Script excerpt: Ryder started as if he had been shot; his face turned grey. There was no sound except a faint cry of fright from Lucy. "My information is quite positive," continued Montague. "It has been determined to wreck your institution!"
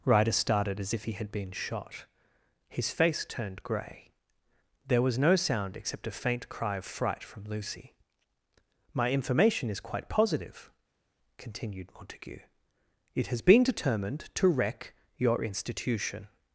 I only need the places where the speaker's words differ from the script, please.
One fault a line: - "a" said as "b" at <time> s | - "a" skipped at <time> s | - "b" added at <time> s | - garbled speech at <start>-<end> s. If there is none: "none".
none